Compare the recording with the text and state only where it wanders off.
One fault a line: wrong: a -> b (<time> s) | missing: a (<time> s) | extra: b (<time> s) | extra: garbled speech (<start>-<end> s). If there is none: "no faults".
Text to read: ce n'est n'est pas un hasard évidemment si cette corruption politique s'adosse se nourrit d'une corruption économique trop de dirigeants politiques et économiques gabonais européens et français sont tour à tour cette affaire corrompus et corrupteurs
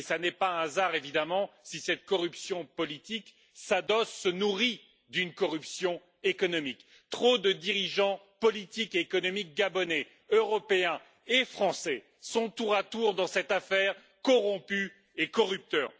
missing: n'est (0.3 s)
extra: dans (13.1 s)